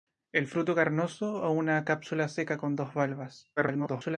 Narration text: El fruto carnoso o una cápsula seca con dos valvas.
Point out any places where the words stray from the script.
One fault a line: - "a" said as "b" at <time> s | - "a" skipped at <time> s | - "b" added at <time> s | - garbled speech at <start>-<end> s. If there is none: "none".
- garbled speech at 3.6-4.2 s